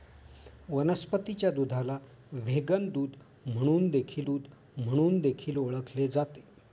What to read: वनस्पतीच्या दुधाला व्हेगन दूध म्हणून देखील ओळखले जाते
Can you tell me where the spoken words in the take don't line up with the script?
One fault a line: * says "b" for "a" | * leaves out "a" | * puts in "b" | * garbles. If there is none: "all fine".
* puts in "दूध म्हणून देखील"